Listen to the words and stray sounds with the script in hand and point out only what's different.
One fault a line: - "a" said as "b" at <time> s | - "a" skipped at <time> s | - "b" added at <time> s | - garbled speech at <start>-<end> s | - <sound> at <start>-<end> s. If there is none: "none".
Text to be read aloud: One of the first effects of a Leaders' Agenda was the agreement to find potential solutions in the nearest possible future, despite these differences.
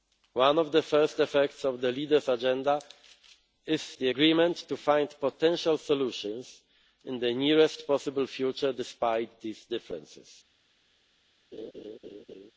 - "a" said as "the" at 1.8 s
- "was" said as "is" at 3.7 s
- laugh at 11.5-12.5 s